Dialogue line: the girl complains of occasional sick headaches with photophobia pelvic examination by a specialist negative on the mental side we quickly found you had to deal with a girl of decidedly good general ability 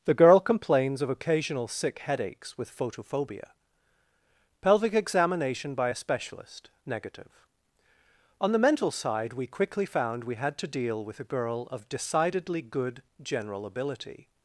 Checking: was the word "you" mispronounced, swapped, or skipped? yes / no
yes